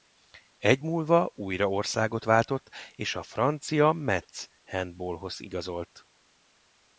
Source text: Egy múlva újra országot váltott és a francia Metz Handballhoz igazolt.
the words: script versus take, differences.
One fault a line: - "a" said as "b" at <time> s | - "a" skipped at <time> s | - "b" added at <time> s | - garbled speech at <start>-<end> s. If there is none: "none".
none